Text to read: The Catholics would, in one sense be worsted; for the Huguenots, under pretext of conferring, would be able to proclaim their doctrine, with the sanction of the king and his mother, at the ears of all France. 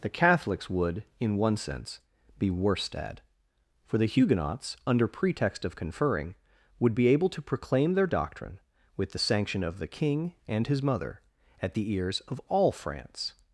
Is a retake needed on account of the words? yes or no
no